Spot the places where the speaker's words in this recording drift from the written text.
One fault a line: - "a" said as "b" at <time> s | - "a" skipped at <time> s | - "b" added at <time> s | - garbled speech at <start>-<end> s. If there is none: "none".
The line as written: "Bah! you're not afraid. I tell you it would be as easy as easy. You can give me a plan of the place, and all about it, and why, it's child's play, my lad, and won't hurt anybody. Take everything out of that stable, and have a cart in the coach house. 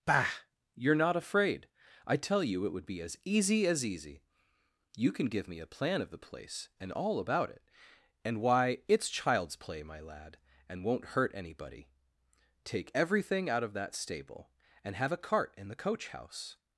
none